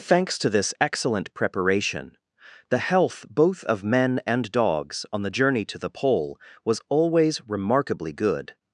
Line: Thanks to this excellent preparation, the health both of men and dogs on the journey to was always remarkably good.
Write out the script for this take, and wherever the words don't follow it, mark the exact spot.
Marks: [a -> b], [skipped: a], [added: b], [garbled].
Thanks to this excellent preparation, the health both of men and dogs on the journey to [added: the Pole] was always remarkably good.